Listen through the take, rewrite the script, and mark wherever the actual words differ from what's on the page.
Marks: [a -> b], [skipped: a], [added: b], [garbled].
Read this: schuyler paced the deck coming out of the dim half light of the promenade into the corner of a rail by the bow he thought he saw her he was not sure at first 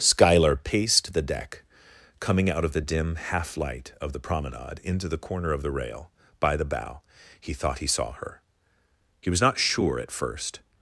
schuyler paced the deck coming out of the dim half light of the promenade into the corner of [a -> the] rail by the bow he thought he saw her he was not sure at first